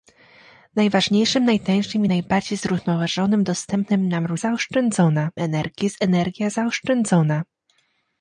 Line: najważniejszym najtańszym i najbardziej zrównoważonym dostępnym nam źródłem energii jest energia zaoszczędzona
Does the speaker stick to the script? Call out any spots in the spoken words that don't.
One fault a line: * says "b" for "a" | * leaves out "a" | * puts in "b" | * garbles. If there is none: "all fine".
* says "zaoszczędzona" for "źródłem"